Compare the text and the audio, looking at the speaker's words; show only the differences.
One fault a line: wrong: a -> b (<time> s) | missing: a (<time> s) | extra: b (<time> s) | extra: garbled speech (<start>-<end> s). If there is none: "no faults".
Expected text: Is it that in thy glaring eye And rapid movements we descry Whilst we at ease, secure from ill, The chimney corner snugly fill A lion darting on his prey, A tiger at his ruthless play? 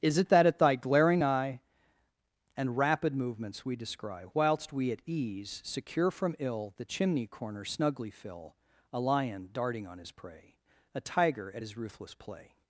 wrong: in -> at (0.5 s)